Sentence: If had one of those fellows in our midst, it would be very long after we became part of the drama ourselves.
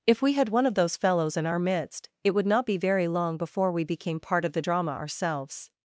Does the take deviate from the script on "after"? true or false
true